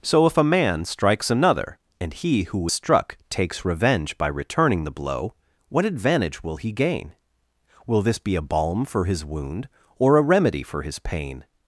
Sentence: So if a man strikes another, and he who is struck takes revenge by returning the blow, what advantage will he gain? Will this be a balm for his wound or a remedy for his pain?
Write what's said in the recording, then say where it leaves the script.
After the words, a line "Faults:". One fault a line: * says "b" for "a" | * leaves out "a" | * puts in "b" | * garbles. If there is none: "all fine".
So if a man strikes another, and he who struck takes revenge by returning the blow, what advantage will he gain? Will this be a balm for his wound or a remedy for his pain?
Faults:
* leaves out "is"